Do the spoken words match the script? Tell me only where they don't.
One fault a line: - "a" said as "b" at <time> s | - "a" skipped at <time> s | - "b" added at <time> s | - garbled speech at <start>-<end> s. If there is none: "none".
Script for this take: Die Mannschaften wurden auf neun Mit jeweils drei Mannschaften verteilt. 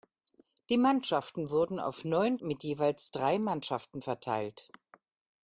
none